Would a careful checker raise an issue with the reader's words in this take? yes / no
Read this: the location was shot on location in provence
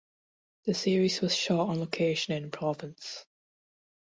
yes